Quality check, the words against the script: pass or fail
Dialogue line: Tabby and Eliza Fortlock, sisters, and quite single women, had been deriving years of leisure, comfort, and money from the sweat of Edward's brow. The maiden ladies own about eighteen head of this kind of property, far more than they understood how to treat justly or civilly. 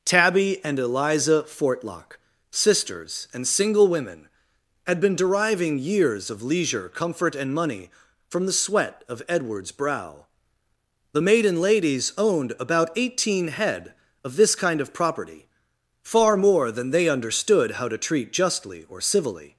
fail